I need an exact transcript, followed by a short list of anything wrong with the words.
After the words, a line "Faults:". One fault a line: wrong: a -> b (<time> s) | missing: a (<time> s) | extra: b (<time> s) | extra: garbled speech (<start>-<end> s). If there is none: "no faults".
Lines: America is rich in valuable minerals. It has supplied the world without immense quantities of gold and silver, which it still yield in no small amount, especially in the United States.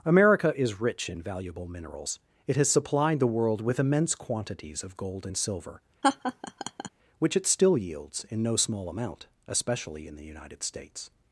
America is rich in valuable minerals. It has supplied the world with immense quantities of gold and silver, which it still yields in no small amount, especially in the United States.
Faults:
wrong: without -> with (3.6 s)
wrong: yield -> yields (7.8 s)